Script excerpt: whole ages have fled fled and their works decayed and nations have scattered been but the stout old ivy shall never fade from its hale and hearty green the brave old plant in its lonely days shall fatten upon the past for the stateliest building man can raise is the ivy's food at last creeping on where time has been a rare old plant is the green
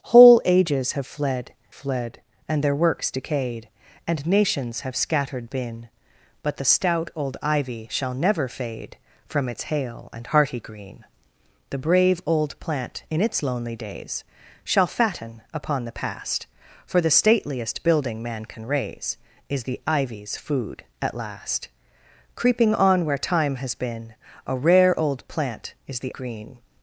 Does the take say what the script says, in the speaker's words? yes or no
yes